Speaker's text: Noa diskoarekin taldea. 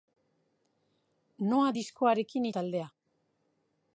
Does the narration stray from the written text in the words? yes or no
no